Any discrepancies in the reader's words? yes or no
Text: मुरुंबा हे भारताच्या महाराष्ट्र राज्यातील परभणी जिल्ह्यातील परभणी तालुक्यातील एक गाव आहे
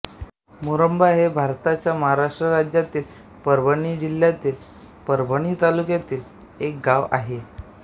no